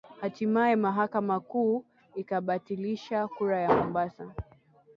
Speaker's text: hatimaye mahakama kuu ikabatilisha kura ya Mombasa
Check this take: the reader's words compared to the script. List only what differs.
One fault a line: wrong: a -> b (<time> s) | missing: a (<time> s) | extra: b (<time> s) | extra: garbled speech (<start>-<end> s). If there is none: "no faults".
no faults